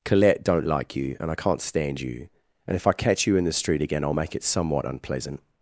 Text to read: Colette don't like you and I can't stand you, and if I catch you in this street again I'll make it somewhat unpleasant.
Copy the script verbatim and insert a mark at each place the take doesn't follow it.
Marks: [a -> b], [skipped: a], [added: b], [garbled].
Colette don't like you and I can't stand you, and if I catch you in [this -> the] street again I'll make it somewhat unpleasant.